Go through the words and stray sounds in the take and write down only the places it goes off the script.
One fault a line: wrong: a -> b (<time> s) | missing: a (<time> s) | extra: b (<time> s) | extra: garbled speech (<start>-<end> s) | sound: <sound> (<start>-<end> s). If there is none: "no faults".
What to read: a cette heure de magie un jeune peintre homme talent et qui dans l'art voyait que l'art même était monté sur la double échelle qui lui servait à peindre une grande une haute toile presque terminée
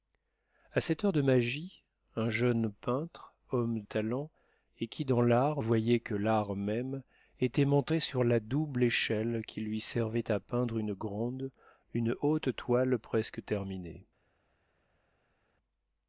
no faults